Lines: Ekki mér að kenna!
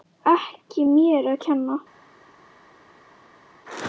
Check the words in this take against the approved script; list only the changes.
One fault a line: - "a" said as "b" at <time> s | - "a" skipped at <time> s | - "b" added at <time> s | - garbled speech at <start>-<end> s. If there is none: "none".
none